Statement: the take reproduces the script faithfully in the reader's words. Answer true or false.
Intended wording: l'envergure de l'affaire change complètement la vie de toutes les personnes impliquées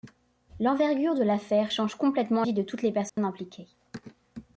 false